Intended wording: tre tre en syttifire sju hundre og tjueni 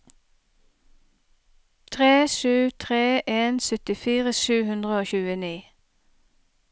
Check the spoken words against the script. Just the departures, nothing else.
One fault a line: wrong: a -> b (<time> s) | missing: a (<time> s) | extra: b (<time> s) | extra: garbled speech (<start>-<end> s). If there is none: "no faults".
extra: sju (2.4 s)